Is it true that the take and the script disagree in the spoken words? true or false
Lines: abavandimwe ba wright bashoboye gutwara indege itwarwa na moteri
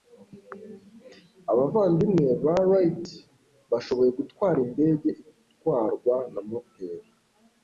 false